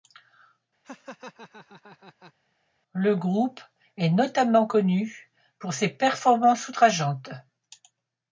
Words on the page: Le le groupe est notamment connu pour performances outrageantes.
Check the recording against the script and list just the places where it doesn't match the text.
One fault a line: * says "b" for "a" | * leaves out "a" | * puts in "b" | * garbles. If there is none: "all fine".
* leaves out "le"
* puts in "ses"